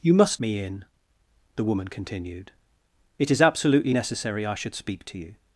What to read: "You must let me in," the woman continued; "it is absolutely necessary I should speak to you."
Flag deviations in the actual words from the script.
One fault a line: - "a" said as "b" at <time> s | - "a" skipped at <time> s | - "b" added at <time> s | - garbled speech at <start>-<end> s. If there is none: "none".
- "let" skipped at 0.4 s